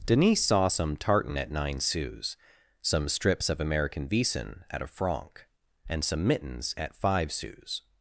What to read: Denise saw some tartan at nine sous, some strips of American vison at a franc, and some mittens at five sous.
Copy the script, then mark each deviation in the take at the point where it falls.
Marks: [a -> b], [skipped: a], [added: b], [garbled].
Denise saw some tartan at nine sous, some strips of American vison at a franc, and some mittens at five sous.